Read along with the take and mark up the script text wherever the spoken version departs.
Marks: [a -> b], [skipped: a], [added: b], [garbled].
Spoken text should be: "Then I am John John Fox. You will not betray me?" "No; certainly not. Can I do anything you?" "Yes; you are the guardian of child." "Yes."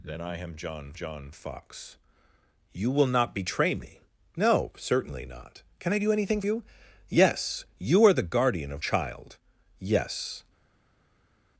"Then I am John John Fox. You will not betray me?" "No; certainly not. Can I do anything you?" "Yes; you are the guardian of child." "Yes."